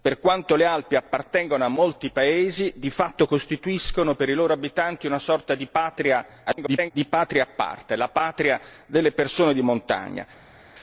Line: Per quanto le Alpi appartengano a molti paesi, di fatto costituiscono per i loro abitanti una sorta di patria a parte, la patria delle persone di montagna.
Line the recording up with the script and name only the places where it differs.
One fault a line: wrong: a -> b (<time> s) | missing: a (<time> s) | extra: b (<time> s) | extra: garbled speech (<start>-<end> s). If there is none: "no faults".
extra: garbled speech (6.5-6.9 s)